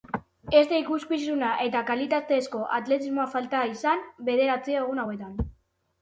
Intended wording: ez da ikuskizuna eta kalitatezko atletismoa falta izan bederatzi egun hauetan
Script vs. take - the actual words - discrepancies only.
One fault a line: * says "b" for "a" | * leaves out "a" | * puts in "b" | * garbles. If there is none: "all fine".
all fine